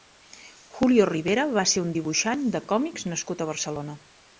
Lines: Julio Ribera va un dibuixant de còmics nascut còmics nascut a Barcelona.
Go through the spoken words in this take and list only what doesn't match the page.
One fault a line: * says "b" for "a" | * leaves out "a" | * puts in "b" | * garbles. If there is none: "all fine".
* puts in "ser"
* leaves out "còmics nascut"